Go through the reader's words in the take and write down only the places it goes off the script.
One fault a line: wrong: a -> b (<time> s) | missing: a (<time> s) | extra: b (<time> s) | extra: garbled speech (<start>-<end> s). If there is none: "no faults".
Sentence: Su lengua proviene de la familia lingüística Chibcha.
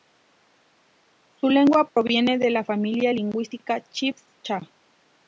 no faults